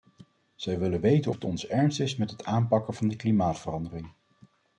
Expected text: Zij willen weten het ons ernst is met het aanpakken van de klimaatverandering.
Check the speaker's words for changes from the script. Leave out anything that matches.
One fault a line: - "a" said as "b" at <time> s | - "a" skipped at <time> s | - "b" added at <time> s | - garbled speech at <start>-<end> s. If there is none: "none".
none